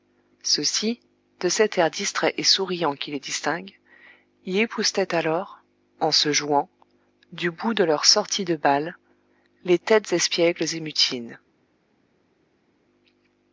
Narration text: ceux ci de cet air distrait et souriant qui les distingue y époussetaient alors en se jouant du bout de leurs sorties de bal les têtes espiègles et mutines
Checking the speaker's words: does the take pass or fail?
pass